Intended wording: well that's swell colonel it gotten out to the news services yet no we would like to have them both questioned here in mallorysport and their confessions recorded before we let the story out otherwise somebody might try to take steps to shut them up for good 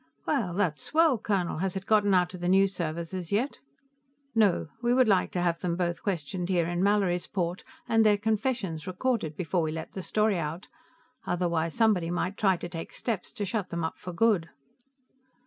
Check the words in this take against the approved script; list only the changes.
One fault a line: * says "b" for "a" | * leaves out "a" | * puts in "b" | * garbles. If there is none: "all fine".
* puts in "has"